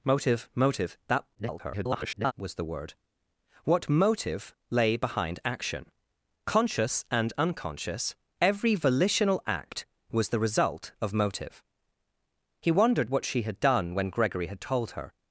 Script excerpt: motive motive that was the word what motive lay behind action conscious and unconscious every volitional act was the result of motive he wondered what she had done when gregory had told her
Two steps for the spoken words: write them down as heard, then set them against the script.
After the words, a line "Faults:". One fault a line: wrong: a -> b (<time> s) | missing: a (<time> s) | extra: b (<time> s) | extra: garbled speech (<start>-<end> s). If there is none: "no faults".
motive motive that [garbled] was the word what motive lay behind action conscious and unconscious every volitional act was the result of motive he wondered what she had done when gregory had told her
Faults:
extra: garbled speech (1.3-2.3 s)